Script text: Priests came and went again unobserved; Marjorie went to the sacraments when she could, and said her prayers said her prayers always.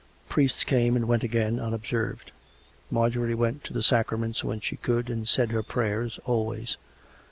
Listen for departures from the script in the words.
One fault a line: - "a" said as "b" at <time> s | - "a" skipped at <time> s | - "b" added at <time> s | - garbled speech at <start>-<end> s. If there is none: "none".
- "said her prayers" skipped at 6.2 s